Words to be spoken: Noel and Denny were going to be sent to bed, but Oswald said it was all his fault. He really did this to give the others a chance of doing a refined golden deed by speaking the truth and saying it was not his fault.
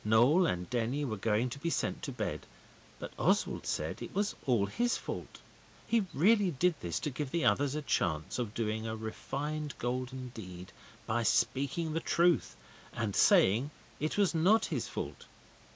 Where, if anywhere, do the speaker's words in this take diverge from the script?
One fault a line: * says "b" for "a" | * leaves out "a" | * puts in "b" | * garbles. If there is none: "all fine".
all fine